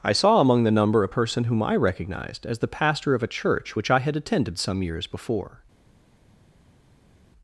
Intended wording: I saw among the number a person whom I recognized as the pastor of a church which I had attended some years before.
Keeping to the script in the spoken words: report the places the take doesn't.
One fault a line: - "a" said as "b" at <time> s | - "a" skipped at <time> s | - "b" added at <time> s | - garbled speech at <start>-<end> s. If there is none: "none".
none